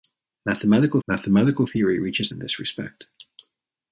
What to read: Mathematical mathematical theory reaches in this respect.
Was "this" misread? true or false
false